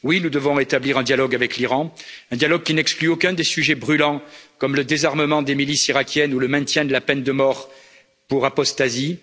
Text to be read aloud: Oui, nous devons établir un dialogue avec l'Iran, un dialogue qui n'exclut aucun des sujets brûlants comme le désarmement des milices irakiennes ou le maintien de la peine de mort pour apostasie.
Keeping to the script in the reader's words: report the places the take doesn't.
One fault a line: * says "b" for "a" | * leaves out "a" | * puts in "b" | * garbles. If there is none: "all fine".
all fine